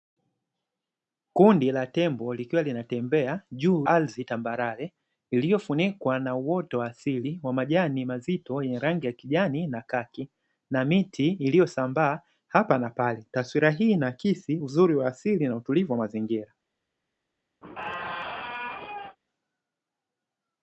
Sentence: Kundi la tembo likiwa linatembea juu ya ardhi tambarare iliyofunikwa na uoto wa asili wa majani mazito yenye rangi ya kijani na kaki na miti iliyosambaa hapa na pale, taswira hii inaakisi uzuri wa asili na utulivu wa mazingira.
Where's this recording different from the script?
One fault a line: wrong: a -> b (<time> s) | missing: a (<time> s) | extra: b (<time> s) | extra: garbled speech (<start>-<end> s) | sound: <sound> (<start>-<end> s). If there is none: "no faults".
missing: ya (3.9 s)
sound: squeak (17.6-19.2 s)